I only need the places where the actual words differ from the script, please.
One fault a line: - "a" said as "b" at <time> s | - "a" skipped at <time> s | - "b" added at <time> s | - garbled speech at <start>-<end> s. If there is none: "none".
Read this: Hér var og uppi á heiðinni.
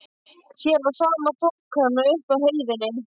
- "sama þokan" added at 1.0 s